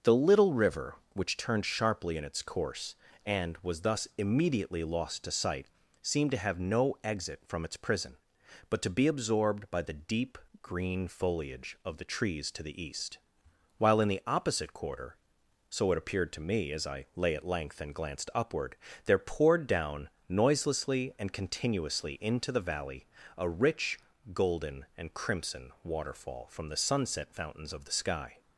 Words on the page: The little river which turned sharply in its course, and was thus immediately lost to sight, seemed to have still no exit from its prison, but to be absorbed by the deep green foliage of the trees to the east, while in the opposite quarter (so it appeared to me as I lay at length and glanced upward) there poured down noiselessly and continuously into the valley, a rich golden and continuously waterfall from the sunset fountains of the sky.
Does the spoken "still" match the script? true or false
false